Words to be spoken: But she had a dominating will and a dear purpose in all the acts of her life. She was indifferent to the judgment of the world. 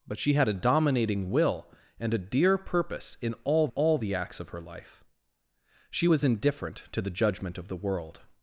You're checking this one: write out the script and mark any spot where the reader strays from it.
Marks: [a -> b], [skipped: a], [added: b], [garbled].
But she had a dominating will and a dear purpose in all [added: all] the acts of her life. She was indifferent to the judgment of the world.